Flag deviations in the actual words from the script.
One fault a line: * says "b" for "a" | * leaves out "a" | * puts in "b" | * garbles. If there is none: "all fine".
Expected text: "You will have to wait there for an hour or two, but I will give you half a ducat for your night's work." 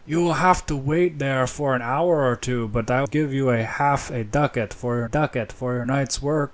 * leaves out "will"
* puts in "ducat for your"